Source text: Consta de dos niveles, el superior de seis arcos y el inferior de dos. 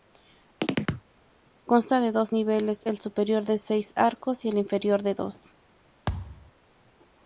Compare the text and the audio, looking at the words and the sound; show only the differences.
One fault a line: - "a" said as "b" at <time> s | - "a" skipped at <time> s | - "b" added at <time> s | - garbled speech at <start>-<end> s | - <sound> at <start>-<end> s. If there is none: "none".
- chirp at 0.6-1.1 s
- thud at 6.1-6.5 s